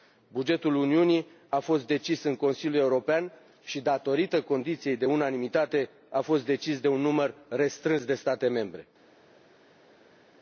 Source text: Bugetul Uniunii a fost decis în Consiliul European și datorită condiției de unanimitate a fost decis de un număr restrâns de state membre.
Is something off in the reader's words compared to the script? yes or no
no